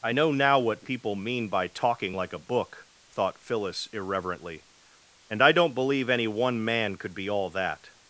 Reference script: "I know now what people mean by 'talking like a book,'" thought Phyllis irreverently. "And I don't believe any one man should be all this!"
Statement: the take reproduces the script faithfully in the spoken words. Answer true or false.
false